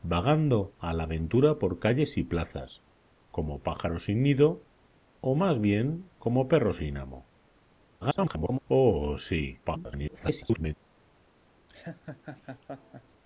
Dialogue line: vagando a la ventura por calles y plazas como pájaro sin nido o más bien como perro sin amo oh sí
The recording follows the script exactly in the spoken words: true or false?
false